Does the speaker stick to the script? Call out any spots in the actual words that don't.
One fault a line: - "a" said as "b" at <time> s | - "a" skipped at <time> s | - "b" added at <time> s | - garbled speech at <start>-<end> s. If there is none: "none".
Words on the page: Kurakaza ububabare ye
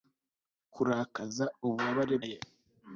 none